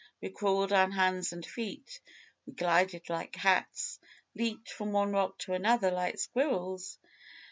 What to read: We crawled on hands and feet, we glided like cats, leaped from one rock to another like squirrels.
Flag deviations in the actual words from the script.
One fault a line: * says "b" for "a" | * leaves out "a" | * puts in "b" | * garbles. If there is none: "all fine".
all fine